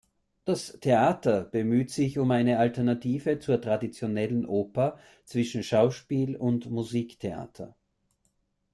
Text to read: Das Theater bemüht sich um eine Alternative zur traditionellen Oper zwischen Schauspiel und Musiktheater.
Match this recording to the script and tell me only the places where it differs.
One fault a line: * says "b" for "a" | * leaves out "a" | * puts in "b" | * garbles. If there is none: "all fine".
all fine